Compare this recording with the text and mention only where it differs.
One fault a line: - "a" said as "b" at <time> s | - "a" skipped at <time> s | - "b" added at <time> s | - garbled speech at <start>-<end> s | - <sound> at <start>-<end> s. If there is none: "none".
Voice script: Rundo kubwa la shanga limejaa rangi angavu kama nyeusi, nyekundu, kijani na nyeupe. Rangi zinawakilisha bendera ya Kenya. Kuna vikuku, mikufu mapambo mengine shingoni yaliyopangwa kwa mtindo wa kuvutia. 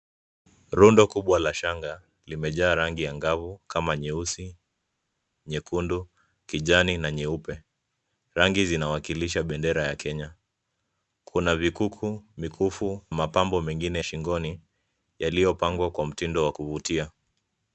none